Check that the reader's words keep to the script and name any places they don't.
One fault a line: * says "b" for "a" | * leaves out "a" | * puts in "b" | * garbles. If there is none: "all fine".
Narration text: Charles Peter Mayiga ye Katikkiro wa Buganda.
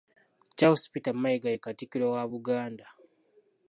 all fine